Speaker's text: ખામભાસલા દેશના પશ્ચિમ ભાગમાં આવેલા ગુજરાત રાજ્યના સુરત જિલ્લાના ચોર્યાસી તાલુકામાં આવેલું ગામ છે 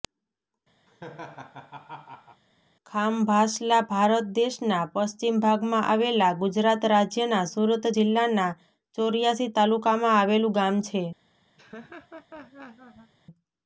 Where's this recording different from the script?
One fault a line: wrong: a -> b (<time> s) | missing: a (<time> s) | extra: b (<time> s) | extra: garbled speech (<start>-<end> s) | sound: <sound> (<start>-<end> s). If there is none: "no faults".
sound: laugh (0.9-2.4 s)
extra: ભારત (3.9 s)
sound: laugh (11.6-13.1 s)